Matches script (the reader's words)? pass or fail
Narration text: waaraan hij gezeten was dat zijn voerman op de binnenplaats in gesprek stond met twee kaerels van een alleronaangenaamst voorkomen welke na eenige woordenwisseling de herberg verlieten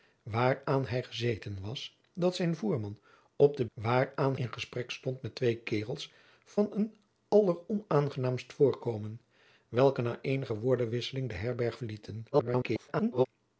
fail